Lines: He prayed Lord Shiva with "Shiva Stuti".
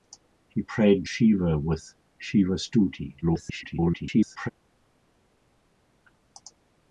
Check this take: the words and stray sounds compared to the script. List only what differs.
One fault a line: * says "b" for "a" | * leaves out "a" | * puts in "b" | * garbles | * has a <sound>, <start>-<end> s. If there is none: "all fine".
* leaves out "Lord"
* garbles